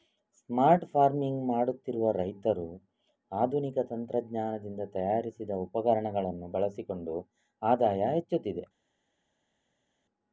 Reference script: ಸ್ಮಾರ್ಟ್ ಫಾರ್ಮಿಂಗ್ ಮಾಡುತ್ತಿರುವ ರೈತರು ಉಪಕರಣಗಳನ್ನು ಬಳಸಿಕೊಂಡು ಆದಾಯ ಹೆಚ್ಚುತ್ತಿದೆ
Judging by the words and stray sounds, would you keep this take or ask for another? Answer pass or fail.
fail